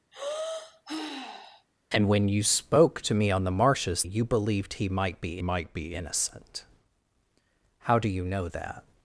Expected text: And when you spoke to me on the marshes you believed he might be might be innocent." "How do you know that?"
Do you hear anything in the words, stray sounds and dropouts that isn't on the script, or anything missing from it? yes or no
yes